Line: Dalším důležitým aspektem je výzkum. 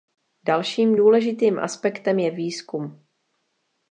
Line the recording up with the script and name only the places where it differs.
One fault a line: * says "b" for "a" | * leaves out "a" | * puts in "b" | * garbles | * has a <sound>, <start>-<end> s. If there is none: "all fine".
all fine